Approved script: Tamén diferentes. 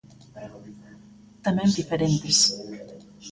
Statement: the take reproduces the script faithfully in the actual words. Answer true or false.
true